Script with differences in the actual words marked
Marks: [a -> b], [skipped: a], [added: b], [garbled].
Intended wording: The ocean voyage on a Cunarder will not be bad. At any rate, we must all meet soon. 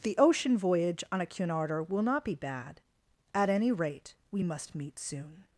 The ocean voyage on a Cunarder will not be bad. At any rate, we must [skipped: all] meet soon.